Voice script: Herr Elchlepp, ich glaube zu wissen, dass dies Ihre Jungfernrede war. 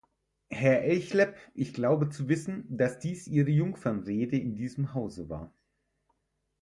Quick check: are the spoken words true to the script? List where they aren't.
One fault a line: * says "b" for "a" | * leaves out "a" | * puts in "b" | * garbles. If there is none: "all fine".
* puts in "in diesem Hause"